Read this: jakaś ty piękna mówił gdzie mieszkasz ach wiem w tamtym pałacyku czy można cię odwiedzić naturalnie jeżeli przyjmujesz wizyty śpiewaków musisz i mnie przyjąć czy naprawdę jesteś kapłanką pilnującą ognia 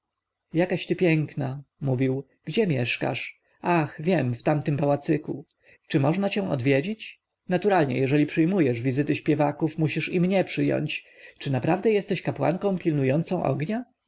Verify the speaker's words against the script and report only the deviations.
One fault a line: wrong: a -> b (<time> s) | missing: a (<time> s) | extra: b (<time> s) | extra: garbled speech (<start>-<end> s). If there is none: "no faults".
no faults